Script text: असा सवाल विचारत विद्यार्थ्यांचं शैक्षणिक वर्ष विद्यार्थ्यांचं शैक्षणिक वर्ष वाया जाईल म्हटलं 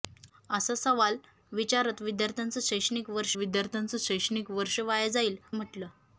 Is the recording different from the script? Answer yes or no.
no